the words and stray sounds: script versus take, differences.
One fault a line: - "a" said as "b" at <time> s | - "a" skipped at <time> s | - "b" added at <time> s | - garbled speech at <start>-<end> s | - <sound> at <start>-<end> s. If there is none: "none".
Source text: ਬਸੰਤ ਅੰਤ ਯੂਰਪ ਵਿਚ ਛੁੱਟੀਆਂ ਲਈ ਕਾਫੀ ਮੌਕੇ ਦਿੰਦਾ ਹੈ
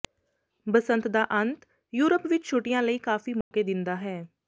- "ਦਾ" added at 1.1 s
- dropout at 3.4-3.5 s